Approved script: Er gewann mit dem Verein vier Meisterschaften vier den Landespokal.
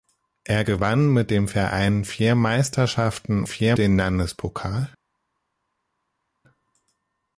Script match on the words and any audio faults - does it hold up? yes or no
yes